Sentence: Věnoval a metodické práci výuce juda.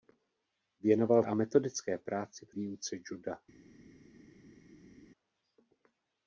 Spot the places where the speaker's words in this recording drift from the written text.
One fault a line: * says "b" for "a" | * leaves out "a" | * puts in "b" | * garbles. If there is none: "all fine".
all fine